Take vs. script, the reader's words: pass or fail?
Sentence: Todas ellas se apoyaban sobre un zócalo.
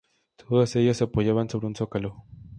pass